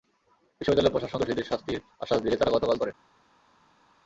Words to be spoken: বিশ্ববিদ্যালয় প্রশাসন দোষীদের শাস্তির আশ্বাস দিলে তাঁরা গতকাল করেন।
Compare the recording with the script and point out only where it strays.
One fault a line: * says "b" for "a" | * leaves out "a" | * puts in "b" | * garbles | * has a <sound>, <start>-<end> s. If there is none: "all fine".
all fine